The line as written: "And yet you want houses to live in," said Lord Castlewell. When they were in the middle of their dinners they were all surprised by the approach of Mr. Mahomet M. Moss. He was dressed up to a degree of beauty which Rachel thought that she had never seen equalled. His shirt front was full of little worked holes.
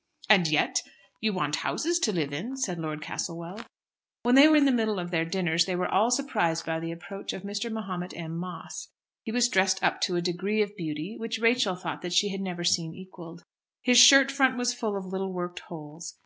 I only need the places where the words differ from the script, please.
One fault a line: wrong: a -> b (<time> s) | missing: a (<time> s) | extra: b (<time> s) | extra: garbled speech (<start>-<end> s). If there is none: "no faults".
no faults